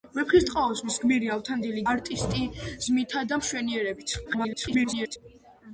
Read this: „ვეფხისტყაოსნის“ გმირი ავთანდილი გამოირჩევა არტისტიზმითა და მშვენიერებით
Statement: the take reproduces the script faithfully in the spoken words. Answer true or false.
false